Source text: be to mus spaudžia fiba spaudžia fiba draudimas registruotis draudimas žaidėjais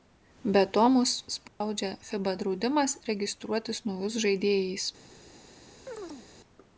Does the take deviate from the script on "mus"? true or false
false